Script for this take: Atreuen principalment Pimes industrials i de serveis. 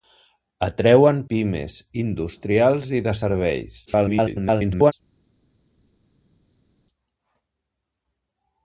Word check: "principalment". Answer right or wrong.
wrong